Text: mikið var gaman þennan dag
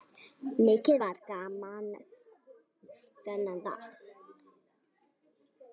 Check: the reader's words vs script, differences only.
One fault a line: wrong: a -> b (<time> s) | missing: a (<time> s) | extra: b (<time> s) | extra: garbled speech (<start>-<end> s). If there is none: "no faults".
no faults